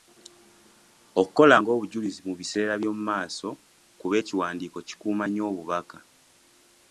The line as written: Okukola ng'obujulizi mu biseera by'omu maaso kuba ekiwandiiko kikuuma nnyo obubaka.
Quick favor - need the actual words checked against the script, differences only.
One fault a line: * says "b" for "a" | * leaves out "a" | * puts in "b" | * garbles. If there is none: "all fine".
all fine